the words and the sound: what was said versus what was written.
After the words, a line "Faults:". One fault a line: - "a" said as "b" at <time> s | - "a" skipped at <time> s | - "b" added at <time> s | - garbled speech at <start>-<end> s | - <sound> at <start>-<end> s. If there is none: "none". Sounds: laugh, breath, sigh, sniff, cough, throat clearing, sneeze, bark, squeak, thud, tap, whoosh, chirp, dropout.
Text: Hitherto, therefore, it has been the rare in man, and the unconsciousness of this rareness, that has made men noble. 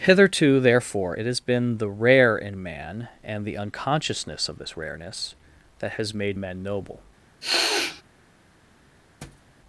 Hitherto, therefore, it has been the rare in man, and the unconsciousness of this rareness, that has made men noble.
Faults:
- sniff at 7.4-8.0 s
- thud at 9.2-9.5 s